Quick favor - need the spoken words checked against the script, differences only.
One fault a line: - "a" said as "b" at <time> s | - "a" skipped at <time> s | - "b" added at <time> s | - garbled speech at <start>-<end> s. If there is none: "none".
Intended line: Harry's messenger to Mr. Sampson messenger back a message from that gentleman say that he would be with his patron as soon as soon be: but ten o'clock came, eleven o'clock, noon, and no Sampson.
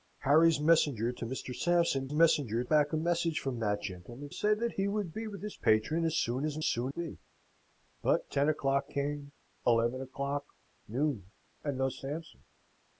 none